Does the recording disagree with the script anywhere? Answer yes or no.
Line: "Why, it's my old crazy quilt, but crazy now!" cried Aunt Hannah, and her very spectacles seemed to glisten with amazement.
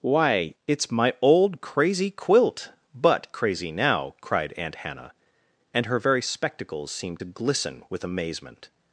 no